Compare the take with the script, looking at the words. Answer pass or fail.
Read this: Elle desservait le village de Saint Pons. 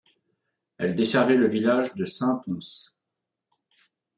pass